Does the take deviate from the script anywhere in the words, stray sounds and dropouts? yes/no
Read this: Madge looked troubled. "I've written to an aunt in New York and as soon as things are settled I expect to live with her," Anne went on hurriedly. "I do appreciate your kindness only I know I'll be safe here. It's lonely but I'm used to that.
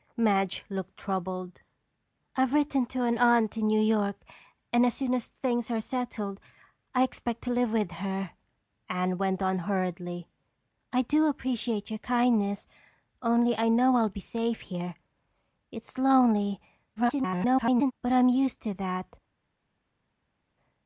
yes